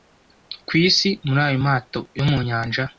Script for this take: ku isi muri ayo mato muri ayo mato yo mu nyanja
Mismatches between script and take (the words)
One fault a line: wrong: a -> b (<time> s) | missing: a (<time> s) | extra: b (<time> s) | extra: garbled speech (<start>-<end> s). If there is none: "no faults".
missing: muri ayo mato (2.0 s)